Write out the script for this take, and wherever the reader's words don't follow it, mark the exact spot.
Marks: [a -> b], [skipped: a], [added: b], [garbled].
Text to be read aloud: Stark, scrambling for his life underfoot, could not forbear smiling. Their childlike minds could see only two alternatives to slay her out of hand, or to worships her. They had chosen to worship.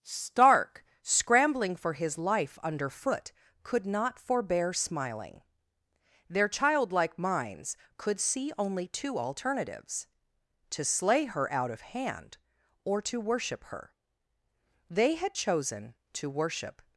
Stark, scrambling for his life underfoot, could not forbear smiling. Their childlike minds could see only two alternatives to slay her out of hand, or to [worships -> worship] her. They had chosen to worship.